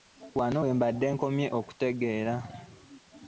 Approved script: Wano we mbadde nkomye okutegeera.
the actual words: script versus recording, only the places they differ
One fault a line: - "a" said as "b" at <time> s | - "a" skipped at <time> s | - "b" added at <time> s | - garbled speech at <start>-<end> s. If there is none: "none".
none